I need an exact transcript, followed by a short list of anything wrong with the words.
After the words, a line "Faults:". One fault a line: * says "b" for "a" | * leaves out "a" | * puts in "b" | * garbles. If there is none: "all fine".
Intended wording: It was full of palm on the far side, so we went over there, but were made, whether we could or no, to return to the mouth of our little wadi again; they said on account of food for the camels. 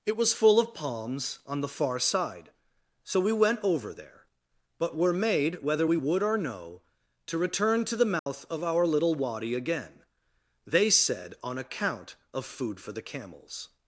It was full of palms on the far side, so we went over there, but were made, whether we would or no, to return to the mouth of our little wadi again; they said on account of food for the camels.
Faults:
* says "palms" for "palm"
* says "would" for "could"